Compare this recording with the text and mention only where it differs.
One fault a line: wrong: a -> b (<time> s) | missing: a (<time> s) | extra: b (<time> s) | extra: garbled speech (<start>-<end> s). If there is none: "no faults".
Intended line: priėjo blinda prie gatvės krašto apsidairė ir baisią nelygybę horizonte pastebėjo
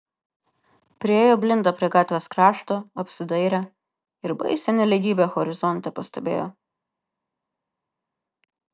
no faults